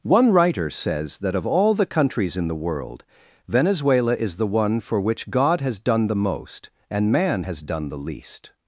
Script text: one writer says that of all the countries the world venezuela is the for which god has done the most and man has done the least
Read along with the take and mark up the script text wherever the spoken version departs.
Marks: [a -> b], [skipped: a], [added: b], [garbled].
one writer says that of all the countries [added: in] the world venezuela is the [added: one] for which god has done the most and man has done the least